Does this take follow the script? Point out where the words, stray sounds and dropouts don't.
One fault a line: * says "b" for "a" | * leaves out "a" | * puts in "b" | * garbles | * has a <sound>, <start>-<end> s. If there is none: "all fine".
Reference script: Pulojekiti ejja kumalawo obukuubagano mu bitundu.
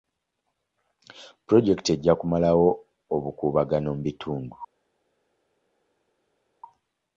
all fine